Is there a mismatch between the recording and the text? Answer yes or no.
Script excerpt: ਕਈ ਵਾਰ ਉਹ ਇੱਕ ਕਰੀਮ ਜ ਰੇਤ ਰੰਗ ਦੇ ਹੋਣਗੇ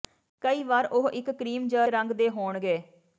yes